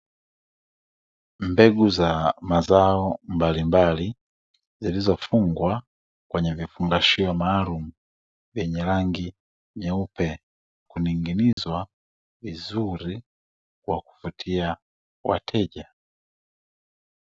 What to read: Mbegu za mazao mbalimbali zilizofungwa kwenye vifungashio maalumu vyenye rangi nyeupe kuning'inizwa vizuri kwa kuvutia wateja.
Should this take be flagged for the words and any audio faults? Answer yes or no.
yes